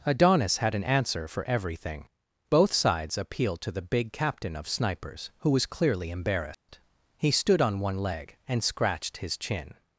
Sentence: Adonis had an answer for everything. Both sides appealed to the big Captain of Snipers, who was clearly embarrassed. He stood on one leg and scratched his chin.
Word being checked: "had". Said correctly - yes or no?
yes